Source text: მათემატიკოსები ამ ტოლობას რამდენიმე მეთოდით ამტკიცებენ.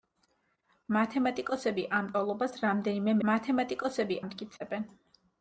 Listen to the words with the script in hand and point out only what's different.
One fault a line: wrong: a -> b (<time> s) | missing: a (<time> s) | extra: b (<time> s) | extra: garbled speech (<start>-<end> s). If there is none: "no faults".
wrong: მეთოდით -> მათემატიკოსები (3.3 s)